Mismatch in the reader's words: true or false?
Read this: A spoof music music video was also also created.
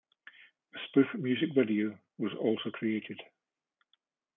true